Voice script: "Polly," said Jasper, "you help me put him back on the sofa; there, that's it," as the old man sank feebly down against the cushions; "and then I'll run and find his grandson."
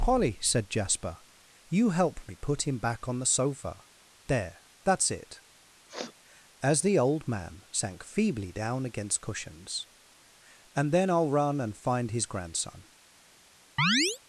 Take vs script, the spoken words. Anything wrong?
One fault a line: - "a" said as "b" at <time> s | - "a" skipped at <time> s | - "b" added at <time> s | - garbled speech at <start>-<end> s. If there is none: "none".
- "the" skipped at 9.2 s